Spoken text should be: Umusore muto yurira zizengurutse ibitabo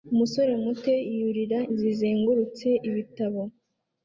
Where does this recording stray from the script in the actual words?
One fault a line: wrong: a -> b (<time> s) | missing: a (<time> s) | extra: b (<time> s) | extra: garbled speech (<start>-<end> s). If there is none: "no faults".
no faults